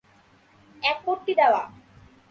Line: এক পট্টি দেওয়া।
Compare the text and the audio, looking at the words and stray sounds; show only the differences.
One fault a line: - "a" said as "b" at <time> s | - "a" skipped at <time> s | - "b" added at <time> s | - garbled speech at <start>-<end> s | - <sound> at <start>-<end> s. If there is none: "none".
none